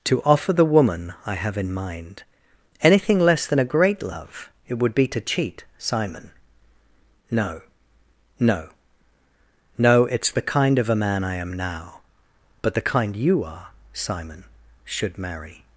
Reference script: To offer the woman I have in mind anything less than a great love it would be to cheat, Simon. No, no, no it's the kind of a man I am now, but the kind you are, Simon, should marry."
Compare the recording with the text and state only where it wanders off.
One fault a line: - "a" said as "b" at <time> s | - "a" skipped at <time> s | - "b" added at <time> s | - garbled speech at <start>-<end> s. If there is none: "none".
none